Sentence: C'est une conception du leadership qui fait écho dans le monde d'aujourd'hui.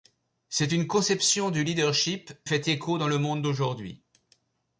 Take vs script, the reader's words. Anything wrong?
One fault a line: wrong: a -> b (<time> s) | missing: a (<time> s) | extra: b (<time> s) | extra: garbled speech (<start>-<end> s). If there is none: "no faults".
missing: qui (2.3 s)